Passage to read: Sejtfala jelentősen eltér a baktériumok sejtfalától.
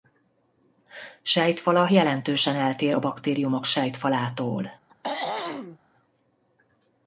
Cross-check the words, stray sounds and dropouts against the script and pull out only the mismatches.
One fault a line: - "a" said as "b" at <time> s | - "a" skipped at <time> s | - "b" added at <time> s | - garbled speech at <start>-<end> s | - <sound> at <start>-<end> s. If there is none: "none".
- throat clearing at 4.9-5.8 s